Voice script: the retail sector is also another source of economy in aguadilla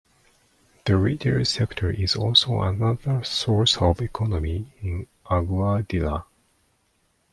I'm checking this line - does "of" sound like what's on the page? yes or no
yes